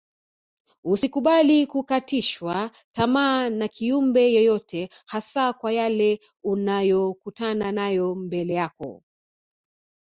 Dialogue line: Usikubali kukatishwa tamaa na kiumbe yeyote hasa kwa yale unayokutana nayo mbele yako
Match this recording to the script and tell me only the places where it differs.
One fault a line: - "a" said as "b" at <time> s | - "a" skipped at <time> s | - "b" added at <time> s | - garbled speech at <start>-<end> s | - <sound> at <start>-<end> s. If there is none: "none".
none